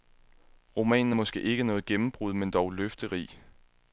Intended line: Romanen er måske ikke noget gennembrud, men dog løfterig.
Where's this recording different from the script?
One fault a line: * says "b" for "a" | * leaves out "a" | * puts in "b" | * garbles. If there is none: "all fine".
all fine